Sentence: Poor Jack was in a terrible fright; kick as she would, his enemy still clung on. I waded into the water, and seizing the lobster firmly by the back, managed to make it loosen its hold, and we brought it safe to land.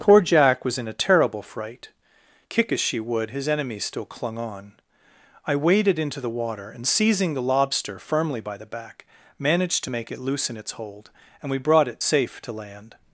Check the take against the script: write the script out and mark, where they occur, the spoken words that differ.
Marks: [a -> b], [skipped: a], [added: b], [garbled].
Poor Jack was in a terrible fright; kick as she would, his enemy still clung on. I waded into the water, and seizing the lobster firmly by the back, managed to make it loosen its hold, and we brought it safe to land.